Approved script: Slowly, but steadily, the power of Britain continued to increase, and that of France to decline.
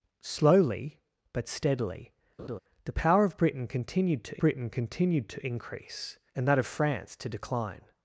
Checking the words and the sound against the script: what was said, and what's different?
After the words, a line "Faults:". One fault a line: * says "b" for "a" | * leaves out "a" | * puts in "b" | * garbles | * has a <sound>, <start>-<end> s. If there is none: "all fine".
Slowly, but steadily, the power of Britain continued to Britain continued to increase, and that of France to decline.
Faults:
* has a laugh, 2.4-2.6 s
* puts in "Britain continued to"